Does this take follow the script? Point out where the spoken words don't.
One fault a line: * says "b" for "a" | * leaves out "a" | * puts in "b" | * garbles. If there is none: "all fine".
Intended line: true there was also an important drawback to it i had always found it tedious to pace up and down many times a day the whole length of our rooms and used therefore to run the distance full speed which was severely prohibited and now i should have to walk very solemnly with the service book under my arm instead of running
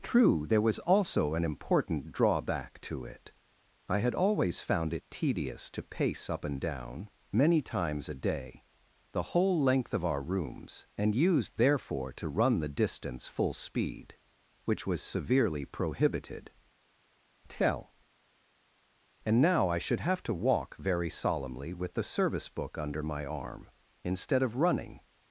* puts in "tell"